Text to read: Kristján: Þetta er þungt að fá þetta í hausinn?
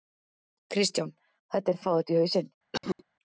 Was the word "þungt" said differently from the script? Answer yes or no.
yes